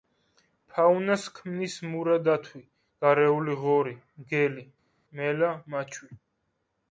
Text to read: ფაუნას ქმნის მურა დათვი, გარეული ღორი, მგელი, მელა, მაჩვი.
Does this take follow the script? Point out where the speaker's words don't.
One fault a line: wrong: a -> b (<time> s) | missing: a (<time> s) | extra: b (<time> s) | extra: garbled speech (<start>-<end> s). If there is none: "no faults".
no faults